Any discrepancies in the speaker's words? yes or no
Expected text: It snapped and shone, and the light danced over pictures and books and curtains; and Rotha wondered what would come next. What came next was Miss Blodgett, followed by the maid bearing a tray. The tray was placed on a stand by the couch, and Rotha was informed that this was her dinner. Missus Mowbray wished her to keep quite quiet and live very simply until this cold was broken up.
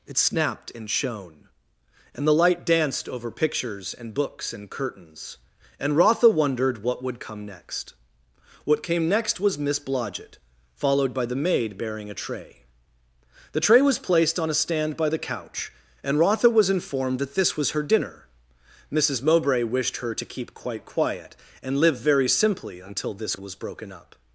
yes